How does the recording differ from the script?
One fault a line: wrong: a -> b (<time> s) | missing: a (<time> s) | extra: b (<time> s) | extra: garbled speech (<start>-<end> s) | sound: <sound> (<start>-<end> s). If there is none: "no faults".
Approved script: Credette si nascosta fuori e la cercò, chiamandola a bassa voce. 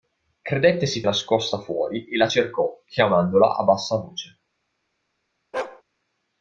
sound: bark (5.5-5.8 s)